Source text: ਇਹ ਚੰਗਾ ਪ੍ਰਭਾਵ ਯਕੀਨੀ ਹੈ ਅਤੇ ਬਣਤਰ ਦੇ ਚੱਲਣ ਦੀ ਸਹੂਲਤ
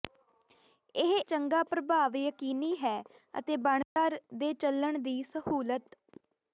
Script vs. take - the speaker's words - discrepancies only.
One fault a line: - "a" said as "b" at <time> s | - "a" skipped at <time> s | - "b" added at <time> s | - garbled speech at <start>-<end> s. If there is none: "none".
none